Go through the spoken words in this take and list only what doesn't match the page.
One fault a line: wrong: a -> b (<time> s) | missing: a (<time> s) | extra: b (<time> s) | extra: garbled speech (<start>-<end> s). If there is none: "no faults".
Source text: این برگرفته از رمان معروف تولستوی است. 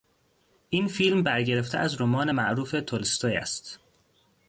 extra: فیلم (0.9 s)